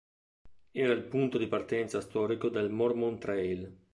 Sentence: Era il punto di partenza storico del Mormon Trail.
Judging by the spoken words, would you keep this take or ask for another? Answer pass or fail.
pass